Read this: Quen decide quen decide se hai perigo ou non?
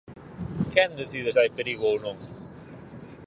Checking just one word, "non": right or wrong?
right